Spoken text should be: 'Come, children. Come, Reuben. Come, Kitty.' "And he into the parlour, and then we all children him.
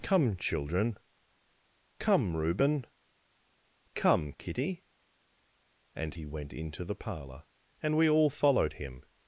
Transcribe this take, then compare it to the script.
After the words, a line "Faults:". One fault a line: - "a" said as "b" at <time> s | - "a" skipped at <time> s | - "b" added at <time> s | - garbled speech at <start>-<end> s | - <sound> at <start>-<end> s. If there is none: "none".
'Come, children. Come, Reuben. Come, Kitty.' "And he went into the parlour, and we all followed him.
Faults:
- "went" added at 6.2 s
- "then" skipped at 8.0 s
- "children" said as "followed" at 8.3 s